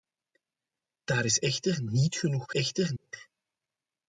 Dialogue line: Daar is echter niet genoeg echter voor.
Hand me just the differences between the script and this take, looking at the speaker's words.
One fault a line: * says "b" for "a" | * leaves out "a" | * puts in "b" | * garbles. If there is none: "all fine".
all fine